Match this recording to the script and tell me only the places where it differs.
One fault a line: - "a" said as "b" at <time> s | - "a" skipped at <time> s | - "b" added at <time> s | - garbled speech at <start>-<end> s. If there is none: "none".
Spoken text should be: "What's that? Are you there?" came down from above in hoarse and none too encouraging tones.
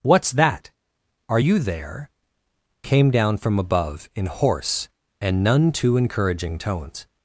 none